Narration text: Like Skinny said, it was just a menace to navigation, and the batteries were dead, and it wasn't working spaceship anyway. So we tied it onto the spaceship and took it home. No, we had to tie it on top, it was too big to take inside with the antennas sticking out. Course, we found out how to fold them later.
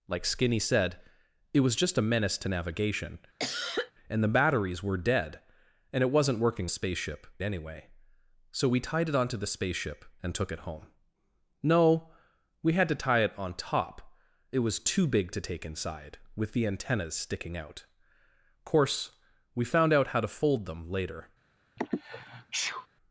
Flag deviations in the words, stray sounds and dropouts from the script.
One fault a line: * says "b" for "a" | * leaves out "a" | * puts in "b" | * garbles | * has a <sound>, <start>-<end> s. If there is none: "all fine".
* has a cough, 3.4-3.9 s
* has a sneeze, 21.8-22.9 s